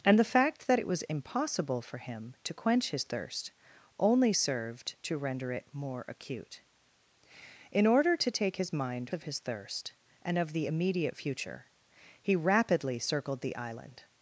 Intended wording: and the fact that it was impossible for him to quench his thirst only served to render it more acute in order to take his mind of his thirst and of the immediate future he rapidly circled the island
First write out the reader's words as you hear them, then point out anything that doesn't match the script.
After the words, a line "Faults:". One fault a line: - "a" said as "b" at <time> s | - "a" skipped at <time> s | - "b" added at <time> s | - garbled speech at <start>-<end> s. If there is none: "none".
and the fact that it was impossible for him to quench his thirst only served to render it more acute in order to take his mind of his thirst and of the immediate future he rapidly circled the island
Faults:
none